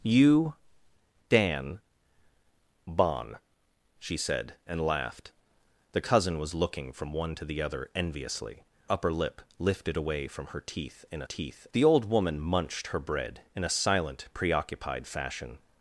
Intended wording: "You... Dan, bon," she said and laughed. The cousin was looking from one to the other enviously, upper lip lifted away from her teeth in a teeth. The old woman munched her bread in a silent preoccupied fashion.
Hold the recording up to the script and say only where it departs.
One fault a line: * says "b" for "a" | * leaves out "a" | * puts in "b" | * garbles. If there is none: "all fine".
all fine